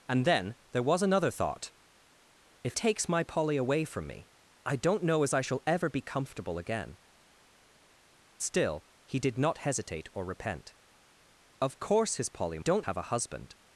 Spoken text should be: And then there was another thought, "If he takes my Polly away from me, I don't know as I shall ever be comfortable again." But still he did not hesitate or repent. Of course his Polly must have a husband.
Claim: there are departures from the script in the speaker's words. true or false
true